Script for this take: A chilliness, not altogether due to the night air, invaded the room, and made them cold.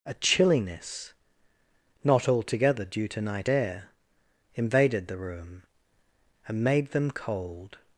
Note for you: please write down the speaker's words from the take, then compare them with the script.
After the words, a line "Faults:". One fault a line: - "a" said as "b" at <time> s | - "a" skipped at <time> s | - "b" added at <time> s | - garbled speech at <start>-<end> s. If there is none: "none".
A chilliness, not altogether due to night air, invaded the room, and made them cold.
Faults:
- "the" skipped at 3.2 s